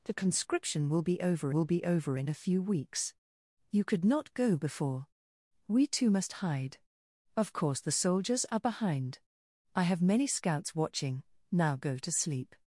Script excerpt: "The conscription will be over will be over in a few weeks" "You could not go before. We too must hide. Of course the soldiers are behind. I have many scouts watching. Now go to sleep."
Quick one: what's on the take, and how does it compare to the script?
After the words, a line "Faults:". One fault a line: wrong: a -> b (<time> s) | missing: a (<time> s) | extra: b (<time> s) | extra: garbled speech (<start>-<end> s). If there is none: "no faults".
"The conscription will be over will be over in a few weeks" "You could not go before. We too must hide. Of course the soldiers are behind. I have many scouts watching. Now go to sleep."
Faults:
no faults